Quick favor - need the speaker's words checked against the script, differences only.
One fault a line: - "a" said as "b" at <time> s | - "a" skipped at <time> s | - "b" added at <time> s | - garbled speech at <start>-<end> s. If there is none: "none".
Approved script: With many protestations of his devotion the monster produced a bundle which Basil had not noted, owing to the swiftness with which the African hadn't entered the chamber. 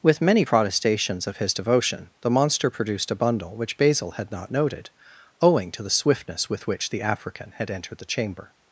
- "hadn't" said as "had" at 7.5 s